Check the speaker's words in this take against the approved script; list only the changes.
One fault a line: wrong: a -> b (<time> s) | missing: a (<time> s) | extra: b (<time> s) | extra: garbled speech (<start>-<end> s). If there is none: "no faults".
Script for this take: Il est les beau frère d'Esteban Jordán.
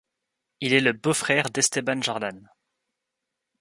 wrong: les -> le (0.8 s)